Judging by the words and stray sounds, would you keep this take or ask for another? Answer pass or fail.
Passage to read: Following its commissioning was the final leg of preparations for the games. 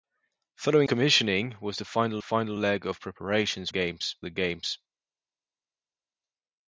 fail